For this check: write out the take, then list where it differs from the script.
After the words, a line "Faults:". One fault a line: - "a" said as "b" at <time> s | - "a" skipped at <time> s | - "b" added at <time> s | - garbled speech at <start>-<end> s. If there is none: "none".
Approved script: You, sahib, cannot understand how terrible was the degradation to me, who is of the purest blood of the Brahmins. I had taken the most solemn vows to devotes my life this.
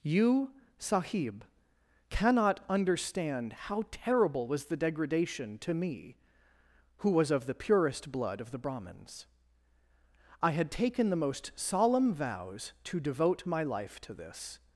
You, sahib, cannot understand how terrible was the degradation to me, who was of the purest blood of the Brahmins. I had taken the most solemn vows to devote my life to this.
Faults:
- "is" said as "was" at 7.1 s
- "devotes" said as "devote" at 13.0 s
- "to" added at 14.0 s